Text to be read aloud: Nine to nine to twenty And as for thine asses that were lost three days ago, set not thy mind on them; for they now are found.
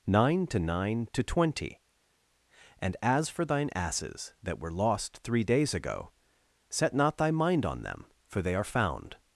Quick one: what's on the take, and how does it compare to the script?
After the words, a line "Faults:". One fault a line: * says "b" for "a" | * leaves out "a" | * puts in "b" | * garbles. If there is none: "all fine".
Nine to nine to twenty And as for thine asses that were lost three days ago, set not thy mind on them; for they are found.
Faults:
* leaves out "now"